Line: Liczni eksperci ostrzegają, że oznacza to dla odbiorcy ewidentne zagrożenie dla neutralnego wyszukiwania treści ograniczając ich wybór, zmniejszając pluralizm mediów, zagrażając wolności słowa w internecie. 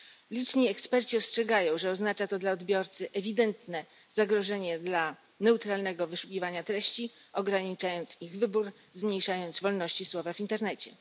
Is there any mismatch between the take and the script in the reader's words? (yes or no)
yes